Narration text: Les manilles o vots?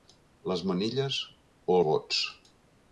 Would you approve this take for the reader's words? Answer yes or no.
yes